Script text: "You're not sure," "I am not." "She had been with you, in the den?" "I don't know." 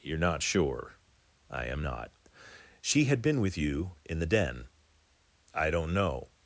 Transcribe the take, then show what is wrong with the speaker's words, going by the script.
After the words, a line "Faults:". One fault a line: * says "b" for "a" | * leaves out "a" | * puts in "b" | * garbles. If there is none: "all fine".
"You're not sure," "I am not." "She had been with you, in the den?" "I don't know."
Faults:
all fine